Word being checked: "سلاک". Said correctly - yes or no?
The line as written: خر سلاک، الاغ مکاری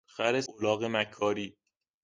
no